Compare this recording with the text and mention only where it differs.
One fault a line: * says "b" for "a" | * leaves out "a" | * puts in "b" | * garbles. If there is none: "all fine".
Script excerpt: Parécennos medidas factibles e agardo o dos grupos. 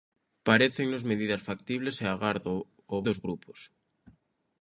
all fine